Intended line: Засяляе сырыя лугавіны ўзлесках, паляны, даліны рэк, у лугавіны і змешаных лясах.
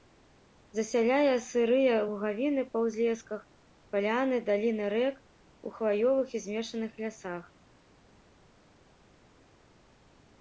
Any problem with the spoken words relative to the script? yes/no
yes